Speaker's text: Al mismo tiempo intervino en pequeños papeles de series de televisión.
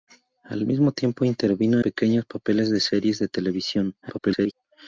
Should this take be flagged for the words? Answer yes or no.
yes